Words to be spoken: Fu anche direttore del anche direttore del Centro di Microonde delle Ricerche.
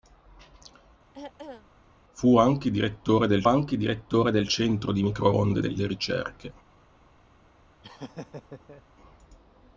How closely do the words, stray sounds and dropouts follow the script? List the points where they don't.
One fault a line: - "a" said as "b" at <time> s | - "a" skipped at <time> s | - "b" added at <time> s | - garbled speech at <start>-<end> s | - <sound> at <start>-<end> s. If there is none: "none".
- throat clearing at 1.1-1.7 s
- laugh at 7.8-8.8 s